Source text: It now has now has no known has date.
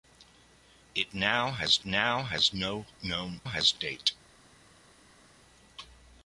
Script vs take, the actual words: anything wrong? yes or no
no